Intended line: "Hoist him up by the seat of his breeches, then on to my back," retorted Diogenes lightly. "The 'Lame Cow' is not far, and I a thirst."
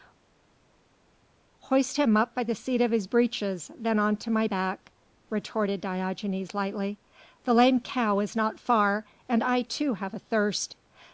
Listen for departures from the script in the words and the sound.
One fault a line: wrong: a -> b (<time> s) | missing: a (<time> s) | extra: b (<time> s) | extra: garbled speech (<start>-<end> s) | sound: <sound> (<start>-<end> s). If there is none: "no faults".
extra: too have (9.6 s)